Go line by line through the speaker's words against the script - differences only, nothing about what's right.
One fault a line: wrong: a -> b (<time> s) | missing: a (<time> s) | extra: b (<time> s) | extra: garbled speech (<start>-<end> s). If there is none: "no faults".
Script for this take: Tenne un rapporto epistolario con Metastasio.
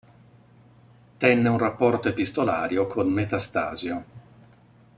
no faults